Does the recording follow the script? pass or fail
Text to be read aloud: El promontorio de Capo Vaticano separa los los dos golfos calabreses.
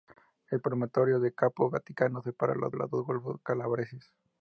pass